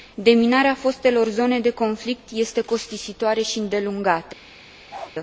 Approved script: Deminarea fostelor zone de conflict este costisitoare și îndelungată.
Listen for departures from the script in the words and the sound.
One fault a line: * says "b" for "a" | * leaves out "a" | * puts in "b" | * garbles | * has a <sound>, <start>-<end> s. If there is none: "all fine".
* has a bark, 4.9-5.1 s